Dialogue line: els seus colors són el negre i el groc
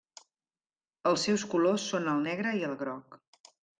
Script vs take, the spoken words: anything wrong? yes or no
no